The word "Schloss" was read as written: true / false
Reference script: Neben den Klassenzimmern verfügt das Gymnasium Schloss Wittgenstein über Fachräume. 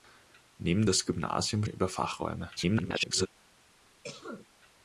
false